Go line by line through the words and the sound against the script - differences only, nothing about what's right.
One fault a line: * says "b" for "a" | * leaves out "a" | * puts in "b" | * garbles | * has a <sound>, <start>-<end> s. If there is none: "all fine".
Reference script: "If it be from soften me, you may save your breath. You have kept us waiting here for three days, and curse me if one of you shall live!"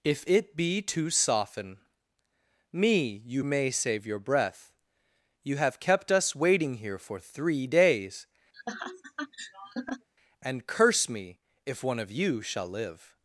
* says "to" for "from"
* has a laugh, 8.5-10.1 s